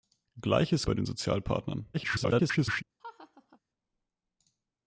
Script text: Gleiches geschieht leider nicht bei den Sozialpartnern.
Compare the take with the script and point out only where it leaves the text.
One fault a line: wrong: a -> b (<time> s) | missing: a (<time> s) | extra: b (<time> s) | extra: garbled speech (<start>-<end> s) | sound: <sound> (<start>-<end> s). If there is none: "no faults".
missing: geschieht leider nicht (0.9 s)
extra: garbled speech (1.9-2.8 s)
sound: laugh (3.0-3.6 s)